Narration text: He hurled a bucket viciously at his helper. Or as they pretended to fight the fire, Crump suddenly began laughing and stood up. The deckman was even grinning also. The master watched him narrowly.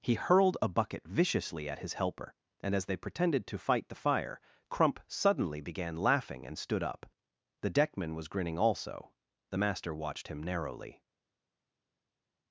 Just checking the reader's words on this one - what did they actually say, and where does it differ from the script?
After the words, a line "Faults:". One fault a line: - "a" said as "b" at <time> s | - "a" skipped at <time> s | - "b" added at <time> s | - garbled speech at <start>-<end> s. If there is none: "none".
He hurled a bucket viciously at his helper. And as they pretended to fight the fire, Crump suddenly began laughing and stood up. The deckman was grinning also. The master watched him narrowly.
Faults:
- "Or" said as "And" at 2.6 s
- "even" skipped at 8.3 s